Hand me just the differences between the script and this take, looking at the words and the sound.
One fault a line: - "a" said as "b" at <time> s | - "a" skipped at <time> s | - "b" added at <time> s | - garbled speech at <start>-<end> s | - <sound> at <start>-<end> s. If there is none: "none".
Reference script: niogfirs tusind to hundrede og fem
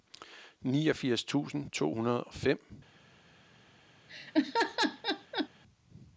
- laugh at 4.1-5.5 s